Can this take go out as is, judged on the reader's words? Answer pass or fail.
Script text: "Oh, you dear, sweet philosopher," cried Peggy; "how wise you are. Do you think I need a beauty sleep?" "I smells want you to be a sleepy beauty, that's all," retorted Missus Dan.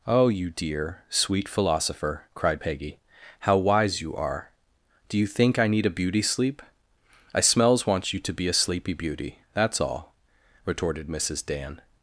pass